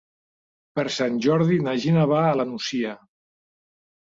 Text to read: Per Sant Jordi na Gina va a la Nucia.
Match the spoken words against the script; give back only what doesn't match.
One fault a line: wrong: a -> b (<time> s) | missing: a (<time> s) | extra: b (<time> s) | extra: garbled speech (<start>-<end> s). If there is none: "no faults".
no faults